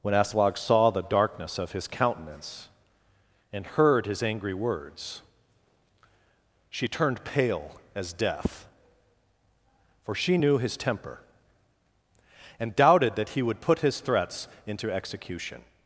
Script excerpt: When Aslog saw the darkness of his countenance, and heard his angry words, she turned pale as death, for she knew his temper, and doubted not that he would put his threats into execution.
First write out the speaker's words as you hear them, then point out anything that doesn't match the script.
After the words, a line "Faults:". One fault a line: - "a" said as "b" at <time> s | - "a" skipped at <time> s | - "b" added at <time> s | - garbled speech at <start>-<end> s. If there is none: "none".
When Aslog saw the darkness of his countenance, and heard his angry words, she turned pale as death, for she knew his temper, and doubted that he would put his threats into execution.
Faults:
- "not" skipped at 13.1 s